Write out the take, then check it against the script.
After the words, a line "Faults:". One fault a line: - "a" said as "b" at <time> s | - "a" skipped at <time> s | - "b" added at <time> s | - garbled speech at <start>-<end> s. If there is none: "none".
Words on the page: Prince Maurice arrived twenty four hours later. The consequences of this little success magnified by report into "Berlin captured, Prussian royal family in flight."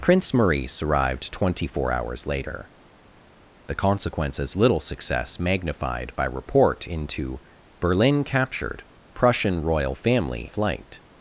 Prince Maurice arrived twenty four hours later. The consequences little success magnified by report into "Berlin captured, Prussian royal family flight."
Faults:
- "of this" skipped at 4.5 s
- "in" skipped at 10.5 s